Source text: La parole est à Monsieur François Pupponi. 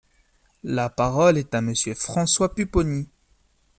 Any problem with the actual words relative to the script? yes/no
no